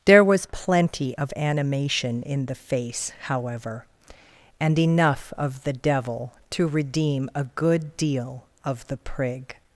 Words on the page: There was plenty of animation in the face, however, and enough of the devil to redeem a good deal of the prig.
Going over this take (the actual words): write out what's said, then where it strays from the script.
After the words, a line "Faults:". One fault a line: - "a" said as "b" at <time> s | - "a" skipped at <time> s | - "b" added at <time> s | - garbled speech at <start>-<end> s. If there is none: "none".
There was plenty of animation in the face, however, and enough of the devil to redeem a good deal of the prig.
Faults:
none